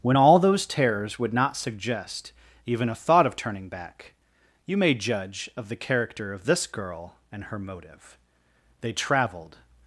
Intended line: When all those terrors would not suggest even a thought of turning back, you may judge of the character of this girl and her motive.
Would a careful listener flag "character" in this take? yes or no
no